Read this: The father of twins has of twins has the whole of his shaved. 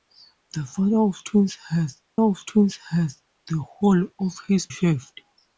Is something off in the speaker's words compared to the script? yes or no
no